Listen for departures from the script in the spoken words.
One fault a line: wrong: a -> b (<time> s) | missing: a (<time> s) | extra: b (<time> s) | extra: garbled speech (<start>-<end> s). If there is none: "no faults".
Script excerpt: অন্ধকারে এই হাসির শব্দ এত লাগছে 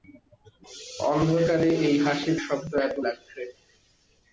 no faults